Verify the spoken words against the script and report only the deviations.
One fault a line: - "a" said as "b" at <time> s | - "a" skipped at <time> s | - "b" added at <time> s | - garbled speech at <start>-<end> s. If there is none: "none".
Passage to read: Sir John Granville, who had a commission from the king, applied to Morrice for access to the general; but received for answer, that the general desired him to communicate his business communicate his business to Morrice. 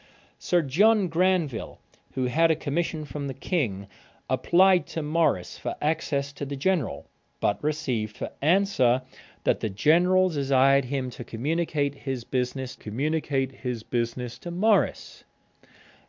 none